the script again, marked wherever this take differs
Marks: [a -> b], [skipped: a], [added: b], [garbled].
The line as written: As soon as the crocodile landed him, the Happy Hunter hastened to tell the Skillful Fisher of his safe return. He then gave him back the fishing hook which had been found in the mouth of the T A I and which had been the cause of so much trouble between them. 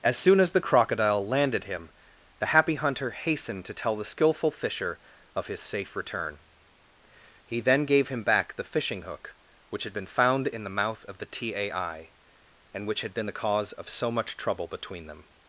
As soon as the crocodile landed him, the Happy Hunter hastened to tell the Skillful Fisher of his safe return. He then gave him back the fishing hook which had been found in the mouth of the T A I and which had been the cause of so much trouble between them.